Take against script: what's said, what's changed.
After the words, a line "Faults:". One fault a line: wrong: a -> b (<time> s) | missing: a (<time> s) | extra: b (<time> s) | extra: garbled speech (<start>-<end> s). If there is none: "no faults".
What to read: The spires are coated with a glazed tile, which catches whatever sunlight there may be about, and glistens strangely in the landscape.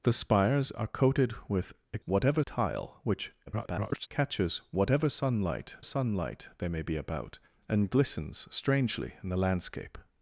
The spires are coated with a whatever tile, which [garbled] catches whatever sunlight sunlight there may be about, and glistens strangely in the landscape.
Faults:
wrong: glazed -> whatever (2.0 s)
extra: garbled speech (3.5-4.1 s)
extra: sunlight (5.8 s)